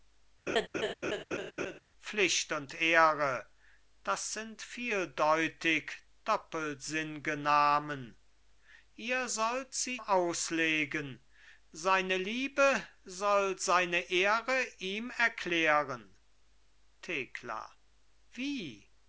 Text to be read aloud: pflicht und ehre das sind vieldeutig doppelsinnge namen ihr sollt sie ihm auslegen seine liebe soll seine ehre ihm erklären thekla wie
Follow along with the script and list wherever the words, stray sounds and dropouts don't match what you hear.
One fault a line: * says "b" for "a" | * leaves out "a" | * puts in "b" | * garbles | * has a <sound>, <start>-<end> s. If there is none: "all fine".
* has a laugh, 0.5-1.8 s
* leaves out "ihm"